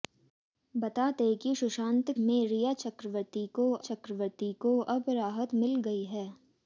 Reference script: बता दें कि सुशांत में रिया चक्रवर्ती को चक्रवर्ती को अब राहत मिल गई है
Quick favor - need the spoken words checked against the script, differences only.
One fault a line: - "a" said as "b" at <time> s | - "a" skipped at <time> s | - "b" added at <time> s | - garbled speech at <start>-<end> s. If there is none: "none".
none